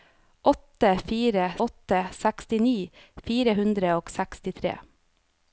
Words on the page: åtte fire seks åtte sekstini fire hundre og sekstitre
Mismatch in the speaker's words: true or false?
true